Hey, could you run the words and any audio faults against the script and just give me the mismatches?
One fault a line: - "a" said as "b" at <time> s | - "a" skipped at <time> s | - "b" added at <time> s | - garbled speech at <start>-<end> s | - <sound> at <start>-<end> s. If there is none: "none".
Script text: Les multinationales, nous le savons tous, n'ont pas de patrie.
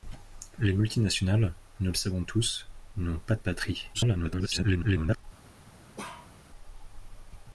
- garbled speech at 3.9-5.2 s
- bark at 6.0-6.3 s